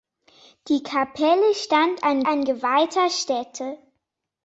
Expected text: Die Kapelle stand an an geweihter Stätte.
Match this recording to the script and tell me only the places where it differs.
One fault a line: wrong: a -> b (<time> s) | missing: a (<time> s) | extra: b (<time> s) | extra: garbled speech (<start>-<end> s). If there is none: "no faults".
no faults